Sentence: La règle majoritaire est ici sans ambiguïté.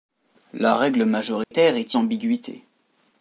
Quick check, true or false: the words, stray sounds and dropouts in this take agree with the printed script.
false